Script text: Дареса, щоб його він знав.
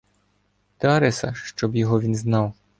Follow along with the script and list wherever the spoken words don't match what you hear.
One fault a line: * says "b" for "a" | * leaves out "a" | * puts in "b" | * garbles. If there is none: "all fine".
all fine